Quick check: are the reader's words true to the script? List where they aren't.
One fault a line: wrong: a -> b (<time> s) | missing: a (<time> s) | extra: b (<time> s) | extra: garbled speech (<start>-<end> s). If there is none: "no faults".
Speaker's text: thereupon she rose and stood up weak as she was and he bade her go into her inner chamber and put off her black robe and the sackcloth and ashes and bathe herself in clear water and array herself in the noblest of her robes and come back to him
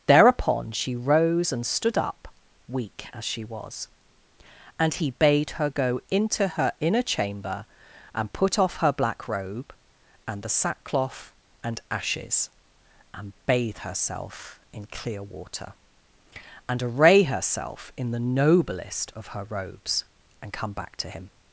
no faults